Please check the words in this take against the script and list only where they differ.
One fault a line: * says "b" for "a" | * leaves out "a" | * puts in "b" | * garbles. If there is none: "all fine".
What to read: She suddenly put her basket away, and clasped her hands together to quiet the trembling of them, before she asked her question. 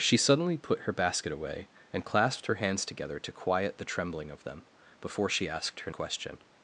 all fine